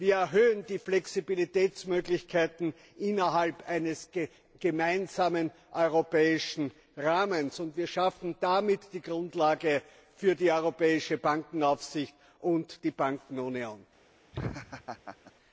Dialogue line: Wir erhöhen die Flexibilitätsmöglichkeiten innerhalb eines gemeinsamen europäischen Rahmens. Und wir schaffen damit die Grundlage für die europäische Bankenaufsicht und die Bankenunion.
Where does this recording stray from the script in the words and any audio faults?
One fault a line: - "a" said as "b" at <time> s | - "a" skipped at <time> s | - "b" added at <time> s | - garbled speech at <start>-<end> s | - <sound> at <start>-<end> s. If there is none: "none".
- laugh at 14.3-15.3 s